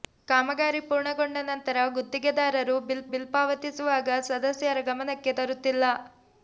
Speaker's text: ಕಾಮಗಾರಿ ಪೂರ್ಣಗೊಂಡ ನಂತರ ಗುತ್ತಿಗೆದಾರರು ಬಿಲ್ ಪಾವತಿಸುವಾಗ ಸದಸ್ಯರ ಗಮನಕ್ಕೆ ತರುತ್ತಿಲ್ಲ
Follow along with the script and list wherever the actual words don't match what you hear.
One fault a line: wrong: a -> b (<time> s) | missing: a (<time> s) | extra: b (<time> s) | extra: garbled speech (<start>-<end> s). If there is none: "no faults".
extra: ಬಿಲ್ (3.1 s)